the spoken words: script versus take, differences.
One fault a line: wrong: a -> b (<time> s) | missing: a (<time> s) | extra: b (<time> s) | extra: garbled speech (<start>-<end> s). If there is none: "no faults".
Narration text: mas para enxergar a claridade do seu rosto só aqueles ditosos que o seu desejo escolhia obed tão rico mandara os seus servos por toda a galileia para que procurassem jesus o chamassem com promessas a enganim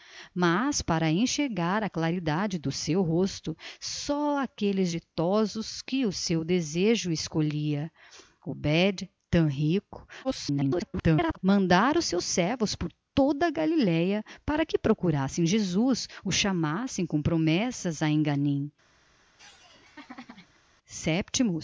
extra: garbled speech (10.2-11.4 s)